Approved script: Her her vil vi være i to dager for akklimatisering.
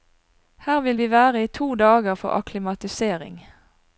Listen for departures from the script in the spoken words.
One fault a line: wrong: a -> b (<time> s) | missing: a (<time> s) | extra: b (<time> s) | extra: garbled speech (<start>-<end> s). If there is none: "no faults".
missing: her (0.8 s)